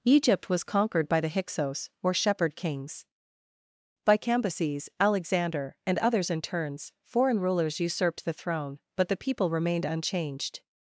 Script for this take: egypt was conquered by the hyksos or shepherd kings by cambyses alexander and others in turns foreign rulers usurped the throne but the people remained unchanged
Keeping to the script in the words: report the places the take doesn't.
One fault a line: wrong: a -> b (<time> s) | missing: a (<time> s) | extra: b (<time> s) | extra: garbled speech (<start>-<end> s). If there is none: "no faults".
no faults